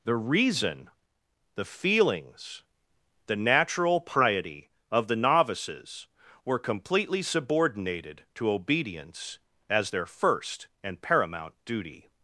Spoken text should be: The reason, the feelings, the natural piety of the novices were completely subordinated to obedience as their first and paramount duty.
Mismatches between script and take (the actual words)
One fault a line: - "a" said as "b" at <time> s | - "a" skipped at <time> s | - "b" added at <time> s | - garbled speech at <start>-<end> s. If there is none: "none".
none